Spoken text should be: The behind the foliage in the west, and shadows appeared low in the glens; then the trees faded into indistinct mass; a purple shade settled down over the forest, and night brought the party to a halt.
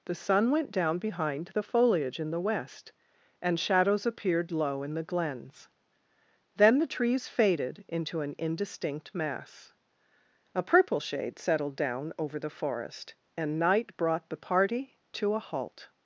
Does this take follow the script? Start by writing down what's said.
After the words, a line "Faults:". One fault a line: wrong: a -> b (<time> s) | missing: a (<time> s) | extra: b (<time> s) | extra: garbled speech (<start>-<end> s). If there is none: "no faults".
The sun went down behind the foliage in the west, and shadows appeared low in the glens; then the trees faded into an indistinct mass; a purple shade settled down over the forest, and night brought the party to a halt.
Faults:
extra: sun went down (0.1 s)
extra: an (8.2 s)